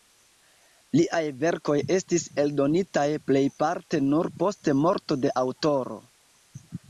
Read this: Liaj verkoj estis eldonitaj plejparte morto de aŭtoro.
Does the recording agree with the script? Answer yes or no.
no